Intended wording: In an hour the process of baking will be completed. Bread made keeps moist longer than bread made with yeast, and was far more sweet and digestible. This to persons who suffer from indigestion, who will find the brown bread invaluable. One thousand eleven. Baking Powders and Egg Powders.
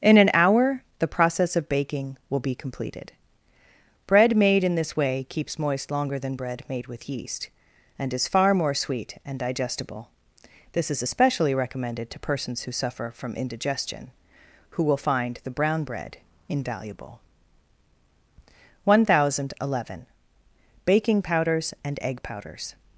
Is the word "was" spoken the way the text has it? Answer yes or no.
no